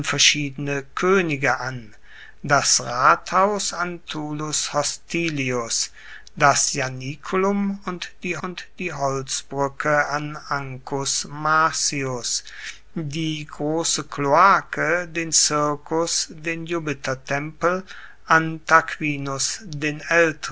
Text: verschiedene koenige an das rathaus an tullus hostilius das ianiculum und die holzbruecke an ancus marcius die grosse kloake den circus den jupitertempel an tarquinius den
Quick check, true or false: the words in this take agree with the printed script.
false